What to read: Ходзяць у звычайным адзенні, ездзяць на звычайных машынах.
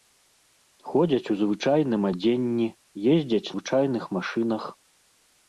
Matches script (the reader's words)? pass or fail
fail